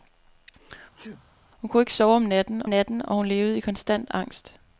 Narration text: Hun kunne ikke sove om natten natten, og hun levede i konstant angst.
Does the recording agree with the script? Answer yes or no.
yes